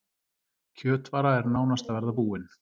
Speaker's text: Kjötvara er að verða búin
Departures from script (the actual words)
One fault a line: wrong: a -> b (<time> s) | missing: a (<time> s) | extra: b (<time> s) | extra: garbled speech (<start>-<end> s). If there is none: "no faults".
extra: nánast (1.5 s)